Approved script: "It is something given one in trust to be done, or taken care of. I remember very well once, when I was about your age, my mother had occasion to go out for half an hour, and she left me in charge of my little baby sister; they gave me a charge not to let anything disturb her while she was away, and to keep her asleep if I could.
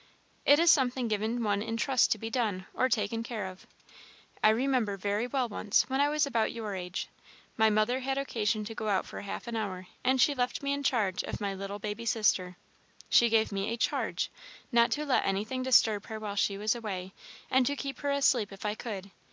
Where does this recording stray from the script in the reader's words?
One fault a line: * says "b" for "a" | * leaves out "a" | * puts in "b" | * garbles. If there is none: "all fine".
* says "she" for "they"